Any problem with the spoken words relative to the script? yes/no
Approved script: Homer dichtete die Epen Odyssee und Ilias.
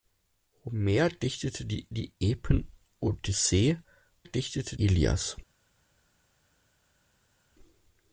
yes